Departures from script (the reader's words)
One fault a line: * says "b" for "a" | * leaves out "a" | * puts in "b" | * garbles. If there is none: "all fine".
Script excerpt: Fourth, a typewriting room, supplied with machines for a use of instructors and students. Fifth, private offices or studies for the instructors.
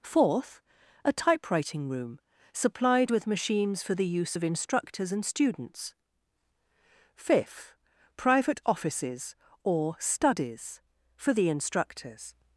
* says "the" for "a"